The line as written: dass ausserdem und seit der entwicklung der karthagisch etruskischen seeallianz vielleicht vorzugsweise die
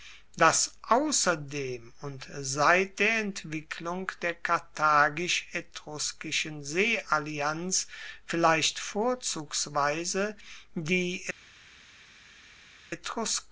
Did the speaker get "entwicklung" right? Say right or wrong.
right